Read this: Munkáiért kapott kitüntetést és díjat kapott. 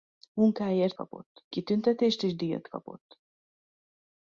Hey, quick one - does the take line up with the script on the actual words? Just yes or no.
yes